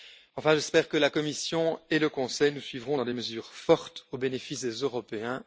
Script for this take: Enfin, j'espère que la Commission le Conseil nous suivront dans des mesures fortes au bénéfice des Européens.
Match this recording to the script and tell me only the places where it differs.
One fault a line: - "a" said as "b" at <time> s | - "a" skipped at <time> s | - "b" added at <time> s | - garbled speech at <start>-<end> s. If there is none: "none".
- "et" added at 1.9 s